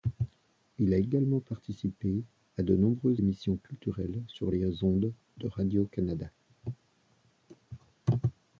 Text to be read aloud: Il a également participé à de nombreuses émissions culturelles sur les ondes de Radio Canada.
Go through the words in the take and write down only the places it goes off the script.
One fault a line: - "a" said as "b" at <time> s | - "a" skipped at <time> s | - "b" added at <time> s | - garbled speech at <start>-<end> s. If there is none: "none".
none